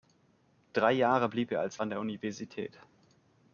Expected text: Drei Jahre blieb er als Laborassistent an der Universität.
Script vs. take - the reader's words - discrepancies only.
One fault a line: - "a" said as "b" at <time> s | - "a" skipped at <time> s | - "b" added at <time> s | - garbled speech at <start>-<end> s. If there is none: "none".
- "Laborassistent" skipped at 1.8 s